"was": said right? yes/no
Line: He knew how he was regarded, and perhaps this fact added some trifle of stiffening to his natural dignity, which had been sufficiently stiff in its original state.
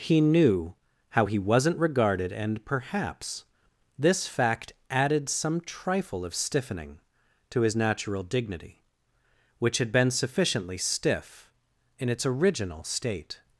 no